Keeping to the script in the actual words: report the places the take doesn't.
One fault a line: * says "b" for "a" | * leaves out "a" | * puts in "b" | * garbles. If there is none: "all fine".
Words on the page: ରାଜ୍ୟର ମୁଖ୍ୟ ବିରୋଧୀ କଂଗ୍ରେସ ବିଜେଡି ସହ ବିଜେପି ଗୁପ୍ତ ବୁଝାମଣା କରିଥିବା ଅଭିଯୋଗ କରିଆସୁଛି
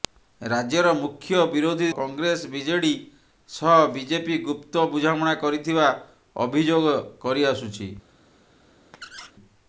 all fine